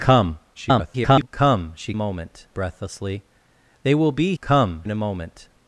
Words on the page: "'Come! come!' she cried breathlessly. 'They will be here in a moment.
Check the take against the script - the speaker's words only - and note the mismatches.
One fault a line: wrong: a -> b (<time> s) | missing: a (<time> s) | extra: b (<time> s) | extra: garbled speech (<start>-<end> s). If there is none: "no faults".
extra: garbled speech (0.5-1.3 s)
wrong: cried -> moment (1.9 s)
wrong: here -> come (4.4 s)